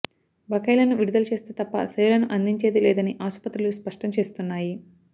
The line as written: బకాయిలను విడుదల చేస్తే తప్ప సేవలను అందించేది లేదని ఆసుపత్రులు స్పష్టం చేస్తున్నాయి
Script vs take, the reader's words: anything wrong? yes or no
no